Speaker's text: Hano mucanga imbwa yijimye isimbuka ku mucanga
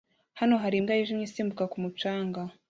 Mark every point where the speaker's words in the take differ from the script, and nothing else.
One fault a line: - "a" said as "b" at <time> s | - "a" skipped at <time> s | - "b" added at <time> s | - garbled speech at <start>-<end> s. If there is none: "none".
- "mucanga" said as "hari" at 0.6 s